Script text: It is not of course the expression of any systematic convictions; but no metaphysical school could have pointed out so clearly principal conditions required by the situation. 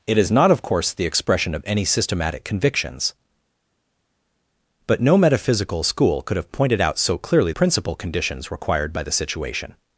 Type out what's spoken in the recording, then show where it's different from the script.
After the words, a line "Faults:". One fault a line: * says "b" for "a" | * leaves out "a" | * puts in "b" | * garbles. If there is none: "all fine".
It is not of course the expression of any systematic convictions; but no metaphysical school could have pointed out so clearly principal conditions required by the situation.
Faults:
all fine